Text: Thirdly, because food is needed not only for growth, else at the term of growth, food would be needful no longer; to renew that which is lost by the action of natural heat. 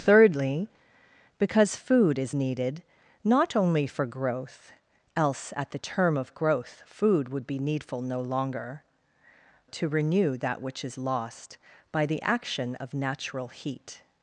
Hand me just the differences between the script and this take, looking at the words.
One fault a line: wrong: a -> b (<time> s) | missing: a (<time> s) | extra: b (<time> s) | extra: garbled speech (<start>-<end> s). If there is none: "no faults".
no faults